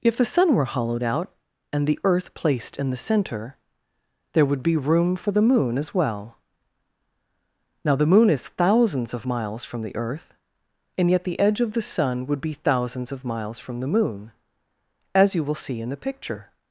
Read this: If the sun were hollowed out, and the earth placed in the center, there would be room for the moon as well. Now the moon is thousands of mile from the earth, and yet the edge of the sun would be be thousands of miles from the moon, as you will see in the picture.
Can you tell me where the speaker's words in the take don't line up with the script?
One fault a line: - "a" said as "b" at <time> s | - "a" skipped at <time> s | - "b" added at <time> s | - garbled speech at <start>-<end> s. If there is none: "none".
- "mile" said as "miles" at 9.2 s
- "be" skipped at 12.5 s